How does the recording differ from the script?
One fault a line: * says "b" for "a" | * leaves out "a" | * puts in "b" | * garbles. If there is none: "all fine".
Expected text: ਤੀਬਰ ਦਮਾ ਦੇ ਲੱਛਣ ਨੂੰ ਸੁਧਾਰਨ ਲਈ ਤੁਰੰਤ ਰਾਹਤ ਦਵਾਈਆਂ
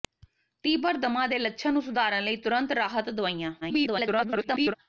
* garbles